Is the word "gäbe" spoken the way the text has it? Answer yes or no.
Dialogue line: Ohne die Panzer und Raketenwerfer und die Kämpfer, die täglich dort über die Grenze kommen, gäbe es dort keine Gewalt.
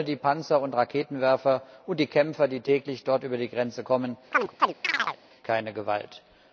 no